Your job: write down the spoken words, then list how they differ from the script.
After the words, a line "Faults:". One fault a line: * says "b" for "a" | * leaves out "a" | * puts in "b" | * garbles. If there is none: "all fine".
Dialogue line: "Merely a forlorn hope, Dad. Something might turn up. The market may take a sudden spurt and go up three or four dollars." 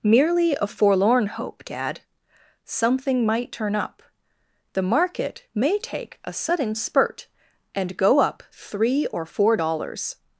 "Merely a forlorn hope, Dad. Something might turn up. The market may take a sudden spurt and go up three or four dollars."
Faults:
all fine